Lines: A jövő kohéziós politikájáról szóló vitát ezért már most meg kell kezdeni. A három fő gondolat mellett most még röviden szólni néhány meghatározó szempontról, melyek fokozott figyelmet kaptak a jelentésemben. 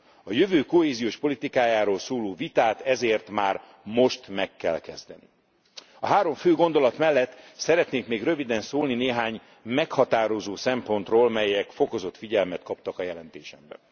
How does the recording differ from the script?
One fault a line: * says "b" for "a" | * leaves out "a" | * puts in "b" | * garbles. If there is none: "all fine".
* says "szeretnék" for "most"